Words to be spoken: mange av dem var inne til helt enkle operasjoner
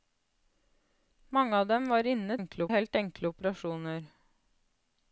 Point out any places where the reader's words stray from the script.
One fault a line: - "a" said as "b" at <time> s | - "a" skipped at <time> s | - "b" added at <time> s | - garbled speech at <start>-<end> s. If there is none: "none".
- "til" said as "enkle" at 2.4 s